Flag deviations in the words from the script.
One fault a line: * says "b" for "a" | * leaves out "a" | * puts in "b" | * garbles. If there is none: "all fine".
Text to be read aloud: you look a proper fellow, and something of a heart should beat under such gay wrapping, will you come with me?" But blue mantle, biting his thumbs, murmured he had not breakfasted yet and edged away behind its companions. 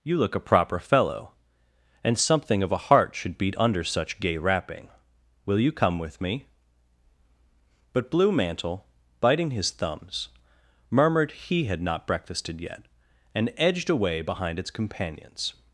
all fine